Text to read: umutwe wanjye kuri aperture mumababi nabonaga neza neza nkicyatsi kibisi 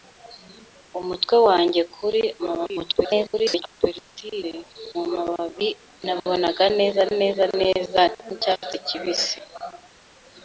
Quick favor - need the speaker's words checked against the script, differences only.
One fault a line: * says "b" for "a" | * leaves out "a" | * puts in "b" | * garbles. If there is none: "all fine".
* garbles
* puts in "neza"